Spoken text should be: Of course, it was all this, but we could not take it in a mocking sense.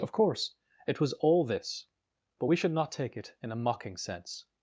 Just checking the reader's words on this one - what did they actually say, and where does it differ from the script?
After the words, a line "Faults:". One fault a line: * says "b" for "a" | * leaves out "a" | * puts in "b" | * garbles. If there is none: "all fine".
Of course, it was all this, but we should not take it in a mocking sense.
Faults:
* says "should" for "could"